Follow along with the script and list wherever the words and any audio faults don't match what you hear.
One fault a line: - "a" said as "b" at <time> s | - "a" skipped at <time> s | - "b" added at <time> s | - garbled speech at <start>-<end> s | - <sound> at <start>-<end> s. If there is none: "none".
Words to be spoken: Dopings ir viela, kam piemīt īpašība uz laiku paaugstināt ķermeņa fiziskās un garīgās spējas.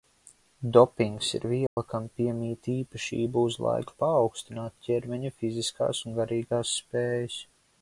- dropout at 1.7-1.8 s